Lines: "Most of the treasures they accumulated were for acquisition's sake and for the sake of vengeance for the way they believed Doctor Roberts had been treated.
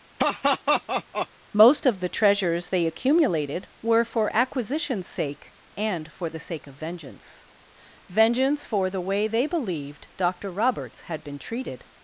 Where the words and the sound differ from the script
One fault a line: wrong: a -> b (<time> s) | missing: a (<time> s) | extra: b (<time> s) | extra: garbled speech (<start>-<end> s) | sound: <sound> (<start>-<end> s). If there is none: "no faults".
sound: laugh (0.2-1.3 s)
extra: vengeance (8.1 s)